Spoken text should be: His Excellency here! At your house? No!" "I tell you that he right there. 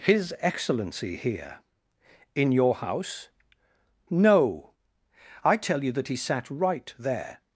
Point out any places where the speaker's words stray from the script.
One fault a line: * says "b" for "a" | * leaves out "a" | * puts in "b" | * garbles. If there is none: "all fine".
* says "In" for "At"
* puts in "sat"